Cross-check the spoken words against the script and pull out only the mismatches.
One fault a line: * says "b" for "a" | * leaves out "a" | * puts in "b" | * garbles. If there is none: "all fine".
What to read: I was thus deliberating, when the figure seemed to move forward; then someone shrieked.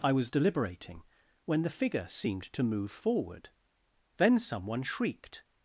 * leaves out "thus"